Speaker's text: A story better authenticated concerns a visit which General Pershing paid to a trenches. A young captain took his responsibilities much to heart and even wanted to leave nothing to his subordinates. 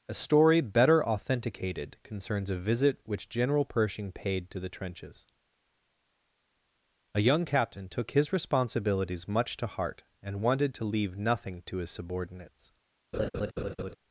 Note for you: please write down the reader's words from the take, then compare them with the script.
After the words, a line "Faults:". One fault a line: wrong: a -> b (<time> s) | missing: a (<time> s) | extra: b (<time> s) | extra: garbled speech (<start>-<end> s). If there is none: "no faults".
A story better authenticated concerns a visit which General Pershing paid to the trenches. A young captain took his responsibilities much to heart and wanted to leave nothing to his subordinates.
Faults:
wrong: a -> the (4.6 s)
missing: even (10.4 s)